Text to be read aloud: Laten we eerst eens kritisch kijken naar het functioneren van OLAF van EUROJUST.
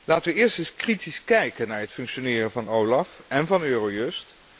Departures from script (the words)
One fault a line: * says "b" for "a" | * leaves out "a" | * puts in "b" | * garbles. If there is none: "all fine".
* puts in "en"